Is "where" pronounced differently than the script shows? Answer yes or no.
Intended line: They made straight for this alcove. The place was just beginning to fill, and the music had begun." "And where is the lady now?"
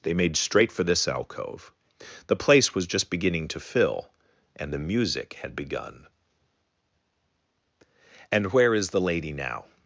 no